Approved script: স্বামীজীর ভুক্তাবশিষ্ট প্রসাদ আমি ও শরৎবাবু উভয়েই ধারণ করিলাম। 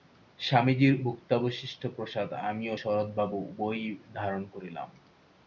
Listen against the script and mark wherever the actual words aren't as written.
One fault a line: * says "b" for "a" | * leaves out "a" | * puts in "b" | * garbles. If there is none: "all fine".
all fine